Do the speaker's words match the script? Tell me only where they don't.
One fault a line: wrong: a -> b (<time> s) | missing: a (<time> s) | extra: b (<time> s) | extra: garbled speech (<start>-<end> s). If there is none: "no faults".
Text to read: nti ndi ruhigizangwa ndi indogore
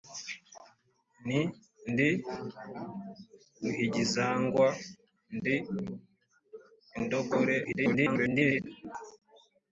extra: garbled speech (7.6-8.7 s)